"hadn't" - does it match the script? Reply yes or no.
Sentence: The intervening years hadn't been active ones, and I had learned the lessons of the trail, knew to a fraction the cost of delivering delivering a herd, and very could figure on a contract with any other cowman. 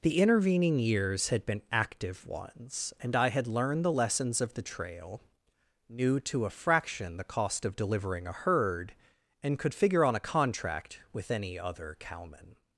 no